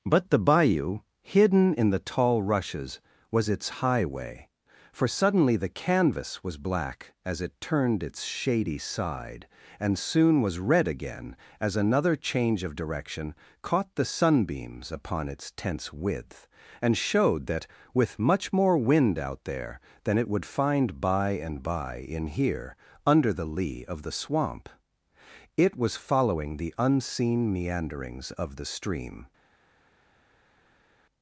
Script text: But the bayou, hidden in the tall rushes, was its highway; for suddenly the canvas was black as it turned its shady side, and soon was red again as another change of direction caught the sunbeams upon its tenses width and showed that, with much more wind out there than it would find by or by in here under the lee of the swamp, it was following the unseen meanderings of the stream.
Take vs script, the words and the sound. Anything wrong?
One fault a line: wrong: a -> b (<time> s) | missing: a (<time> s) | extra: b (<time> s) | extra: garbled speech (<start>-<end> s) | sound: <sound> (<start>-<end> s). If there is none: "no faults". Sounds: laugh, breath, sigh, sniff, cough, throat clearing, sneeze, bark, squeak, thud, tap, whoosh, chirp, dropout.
wrong: tenses -> tense (15.6 s)
wrong: or -> and (21.3 s)